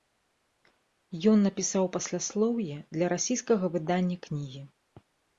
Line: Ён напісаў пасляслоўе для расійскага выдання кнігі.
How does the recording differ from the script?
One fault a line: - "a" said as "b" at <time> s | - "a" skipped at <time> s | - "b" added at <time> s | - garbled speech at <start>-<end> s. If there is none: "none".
none